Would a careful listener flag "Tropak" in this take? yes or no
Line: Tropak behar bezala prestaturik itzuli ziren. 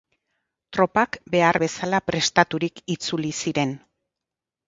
no